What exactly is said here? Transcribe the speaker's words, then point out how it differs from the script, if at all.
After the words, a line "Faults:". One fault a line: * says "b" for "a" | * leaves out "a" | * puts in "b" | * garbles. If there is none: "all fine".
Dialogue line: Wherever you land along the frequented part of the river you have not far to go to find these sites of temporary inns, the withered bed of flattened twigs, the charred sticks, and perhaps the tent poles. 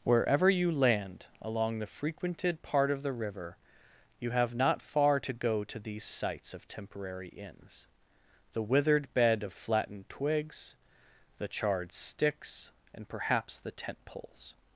Wherever you land along the frequented part of the river you have not far to go to these sites of temporary inns, the withered bed of flattened twigs, the charred sticks, and perhaps the tent poles.
Faults:
* leaves out "find"